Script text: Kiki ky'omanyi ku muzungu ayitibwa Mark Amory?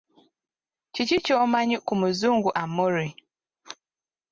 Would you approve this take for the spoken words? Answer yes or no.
no